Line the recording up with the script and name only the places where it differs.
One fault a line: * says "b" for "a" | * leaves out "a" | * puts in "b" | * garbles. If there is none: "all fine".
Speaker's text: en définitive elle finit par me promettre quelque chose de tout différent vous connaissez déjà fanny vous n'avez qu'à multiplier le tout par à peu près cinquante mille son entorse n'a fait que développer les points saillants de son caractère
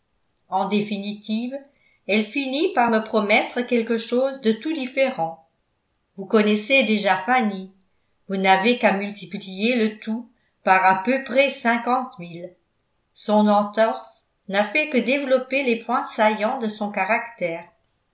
all fine